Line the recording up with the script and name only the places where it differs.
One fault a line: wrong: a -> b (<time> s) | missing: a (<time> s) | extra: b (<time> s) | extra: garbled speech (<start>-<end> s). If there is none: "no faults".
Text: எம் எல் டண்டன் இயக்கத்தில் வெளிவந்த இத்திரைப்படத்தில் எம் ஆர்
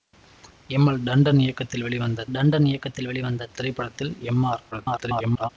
extra: டண்டன் இயக்கத்தில் வெளிவந்த (2.3 s)
extra: garbled speech (4.7-5.5 s)